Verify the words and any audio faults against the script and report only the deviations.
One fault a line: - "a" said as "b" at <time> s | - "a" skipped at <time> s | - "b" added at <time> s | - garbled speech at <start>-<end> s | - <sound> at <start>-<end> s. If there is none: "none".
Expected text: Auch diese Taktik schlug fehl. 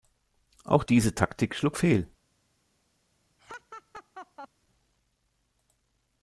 - laugh at 3.4-4.5 s